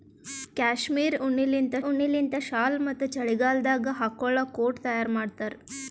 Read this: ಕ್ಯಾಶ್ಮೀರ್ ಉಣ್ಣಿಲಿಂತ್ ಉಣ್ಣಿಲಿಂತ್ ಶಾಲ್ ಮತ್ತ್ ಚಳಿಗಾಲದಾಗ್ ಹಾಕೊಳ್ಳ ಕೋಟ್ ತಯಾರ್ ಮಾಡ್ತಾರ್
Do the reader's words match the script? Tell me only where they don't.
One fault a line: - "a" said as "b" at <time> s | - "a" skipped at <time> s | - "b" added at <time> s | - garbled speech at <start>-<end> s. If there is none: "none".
none